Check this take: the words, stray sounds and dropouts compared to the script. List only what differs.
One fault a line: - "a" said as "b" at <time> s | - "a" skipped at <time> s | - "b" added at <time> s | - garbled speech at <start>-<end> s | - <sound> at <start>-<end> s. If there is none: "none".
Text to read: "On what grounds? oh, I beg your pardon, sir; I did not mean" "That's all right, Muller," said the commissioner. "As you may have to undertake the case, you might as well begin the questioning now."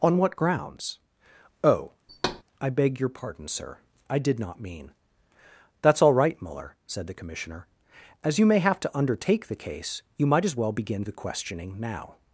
- thud at 2.1-2.4 s